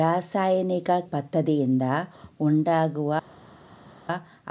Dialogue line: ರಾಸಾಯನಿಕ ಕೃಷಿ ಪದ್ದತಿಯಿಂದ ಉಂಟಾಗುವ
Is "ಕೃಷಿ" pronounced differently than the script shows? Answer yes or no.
yes